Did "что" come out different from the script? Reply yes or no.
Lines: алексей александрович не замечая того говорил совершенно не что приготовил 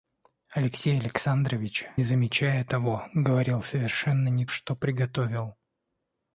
no